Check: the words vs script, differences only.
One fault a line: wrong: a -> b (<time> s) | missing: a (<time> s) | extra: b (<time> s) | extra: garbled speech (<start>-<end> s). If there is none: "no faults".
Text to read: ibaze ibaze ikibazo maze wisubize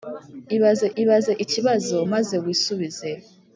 no faults